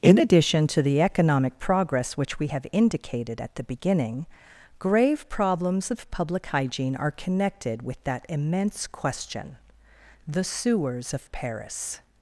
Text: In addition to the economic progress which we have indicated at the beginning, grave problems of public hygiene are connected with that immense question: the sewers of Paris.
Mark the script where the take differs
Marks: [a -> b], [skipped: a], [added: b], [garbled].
In addition to the economic progress which we have indicated at the beginning, grave problems of public hygiene are connected with that immense question: the sewers of Paris.